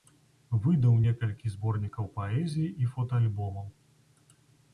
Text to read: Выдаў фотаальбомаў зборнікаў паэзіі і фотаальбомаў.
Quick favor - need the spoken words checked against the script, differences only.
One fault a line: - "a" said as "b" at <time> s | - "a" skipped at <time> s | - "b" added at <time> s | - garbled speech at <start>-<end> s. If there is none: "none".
- "фотаальбомаў" said as "некалькі" at 1.0 s